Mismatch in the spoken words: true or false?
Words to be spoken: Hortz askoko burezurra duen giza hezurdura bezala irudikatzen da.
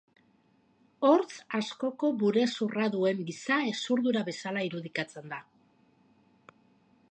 false